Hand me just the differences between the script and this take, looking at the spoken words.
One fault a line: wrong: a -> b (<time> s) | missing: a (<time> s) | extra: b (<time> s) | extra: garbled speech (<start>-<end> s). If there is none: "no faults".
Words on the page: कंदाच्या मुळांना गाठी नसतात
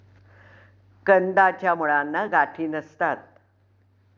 no faults